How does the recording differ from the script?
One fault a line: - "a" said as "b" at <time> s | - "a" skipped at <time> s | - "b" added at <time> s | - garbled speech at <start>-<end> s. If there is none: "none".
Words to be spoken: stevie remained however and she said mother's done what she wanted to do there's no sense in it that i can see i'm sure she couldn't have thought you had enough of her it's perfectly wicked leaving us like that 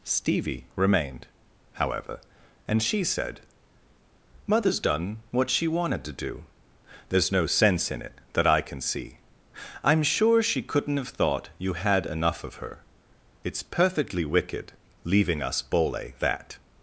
- "like" said as "bole" at 15.6 s